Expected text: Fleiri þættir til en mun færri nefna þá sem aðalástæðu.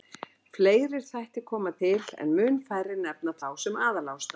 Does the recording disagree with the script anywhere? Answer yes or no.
yes